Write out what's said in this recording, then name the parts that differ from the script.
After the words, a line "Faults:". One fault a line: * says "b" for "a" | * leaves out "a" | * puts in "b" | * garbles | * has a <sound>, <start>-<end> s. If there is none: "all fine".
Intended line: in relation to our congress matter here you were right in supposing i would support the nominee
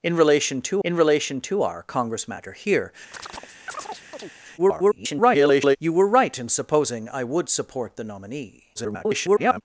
in relation to in relation to our congress matter here [garbled] you were right in supposing i would support the nominee [garbled]
Faults:
* puts in "in relation to"
* has a chirp, 3.1-4.3 s
* garbles
* garbles